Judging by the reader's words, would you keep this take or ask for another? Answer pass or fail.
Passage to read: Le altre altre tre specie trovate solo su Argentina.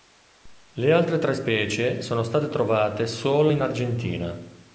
fail